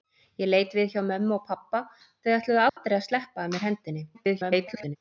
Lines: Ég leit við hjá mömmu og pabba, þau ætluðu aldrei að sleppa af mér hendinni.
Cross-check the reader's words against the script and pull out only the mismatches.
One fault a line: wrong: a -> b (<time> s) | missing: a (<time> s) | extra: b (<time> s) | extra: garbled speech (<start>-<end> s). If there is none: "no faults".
extra: garbled speech (4.1-5.0 s)